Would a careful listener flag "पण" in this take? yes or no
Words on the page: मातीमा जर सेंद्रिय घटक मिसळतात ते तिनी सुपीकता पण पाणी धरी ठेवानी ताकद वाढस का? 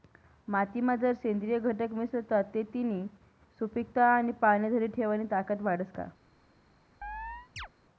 yes